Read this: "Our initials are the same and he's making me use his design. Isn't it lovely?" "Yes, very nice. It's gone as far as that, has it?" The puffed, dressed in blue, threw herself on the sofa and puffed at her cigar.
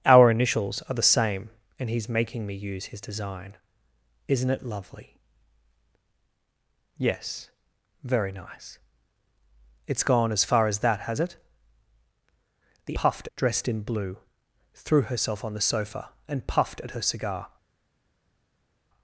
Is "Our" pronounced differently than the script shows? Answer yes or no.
no